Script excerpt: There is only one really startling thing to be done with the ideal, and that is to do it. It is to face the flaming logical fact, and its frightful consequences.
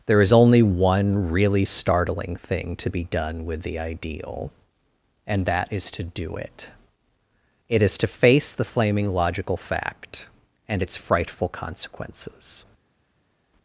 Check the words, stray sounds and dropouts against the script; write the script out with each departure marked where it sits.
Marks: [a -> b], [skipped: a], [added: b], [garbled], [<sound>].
There is only one really startling thing to be done with the ideal, and that is to do it. It is to face the flaming logical fact, and its frightful consequences.